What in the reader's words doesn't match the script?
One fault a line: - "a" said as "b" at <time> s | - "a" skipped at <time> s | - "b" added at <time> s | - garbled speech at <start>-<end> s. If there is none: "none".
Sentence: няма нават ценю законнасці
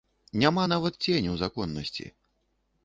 none